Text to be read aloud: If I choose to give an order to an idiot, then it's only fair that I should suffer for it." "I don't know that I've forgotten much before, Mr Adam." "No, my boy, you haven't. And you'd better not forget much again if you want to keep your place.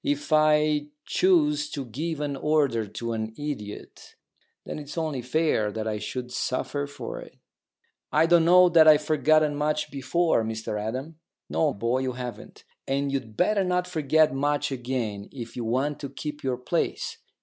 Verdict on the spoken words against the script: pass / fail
fail